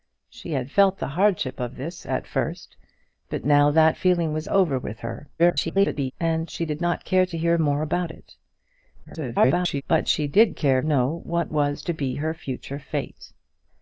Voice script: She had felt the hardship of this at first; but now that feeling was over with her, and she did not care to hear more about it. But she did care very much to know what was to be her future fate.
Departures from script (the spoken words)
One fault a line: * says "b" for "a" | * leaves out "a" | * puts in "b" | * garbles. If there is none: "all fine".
* garbles
* garbles
* leaves out "very much to"